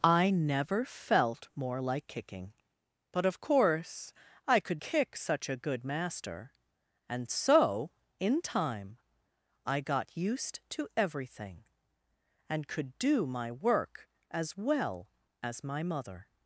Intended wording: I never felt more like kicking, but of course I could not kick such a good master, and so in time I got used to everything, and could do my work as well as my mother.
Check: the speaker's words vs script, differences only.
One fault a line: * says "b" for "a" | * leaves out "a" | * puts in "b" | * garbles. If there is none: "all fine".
* leaves out "not"